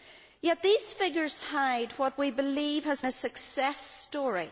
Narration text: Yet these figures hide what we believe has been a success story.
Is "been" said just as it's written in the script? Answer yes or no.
no